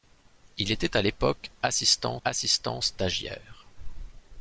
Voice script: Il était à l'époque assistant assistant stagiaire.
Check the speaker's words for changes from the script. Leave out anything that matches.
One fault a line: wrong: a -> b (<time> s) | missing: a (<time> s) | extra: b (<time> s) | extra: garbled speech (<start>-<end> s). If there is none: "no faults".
no faults